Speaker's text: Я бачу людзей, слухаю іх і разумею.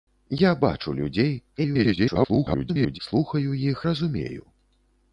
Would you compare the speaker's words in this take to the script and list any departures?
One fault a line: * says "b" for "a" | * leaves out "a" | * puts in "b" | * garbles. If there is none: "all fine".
* garbles
* leaves out "і"